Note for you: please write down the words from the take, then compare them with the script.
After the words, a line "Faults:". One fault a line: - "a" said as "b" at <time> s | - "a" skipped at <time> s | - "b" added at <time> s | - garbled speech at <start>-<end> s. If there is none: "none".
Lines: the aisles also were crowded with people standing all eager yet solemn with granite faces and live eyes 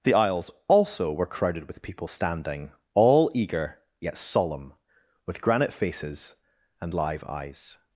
the aisles also were crowded with people standing all eager yet solemn with granite faces and live eyes
Faults:
none